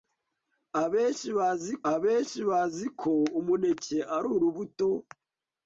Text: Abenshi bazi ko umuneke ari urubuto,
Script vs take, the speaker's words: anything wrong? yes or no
yes